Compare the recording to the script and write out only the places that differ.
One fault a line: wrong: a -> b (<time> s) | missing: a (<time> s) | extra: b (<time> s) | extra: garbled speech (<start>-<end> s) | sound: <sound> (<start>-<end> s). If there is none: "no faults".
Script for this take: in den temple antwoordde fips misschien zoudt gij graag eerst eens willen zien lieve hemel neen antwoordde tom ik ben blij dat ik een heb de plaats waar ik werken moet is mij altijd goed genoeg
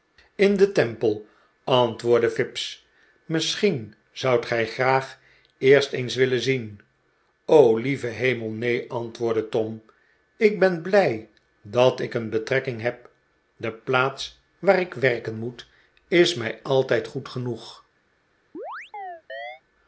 extra: betrekking (12.3 s)
sound: chirp (18.5-19.6 s)